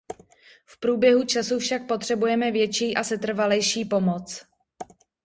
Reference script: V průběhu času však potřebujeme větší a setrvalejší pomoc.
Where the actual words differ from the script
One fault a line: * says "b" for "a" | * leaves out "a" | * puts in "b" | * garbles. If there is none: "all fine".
all fine